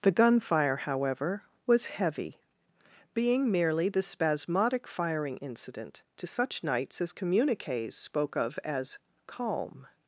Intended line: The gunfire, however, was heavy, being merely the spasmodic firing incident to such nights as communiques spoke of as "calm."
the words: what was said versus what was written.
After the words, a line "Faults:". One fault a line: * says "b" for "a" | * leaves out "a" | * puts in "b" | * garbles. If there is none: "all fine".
The gunfire, however, was heavy, being merely the spasmodic firing incident to such nights as communiques spoke of as "calm."
Faults:
all fine